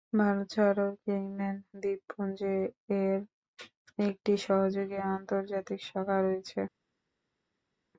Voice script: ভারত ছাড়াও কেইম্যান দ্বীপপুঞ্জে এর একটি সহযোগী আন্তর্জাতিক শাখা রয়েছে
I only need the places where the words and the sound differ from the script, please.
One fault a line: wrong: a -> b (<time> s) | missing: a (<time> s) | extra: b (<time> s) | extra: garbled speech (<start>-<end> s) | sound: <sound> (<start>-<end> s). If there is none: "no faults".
no faults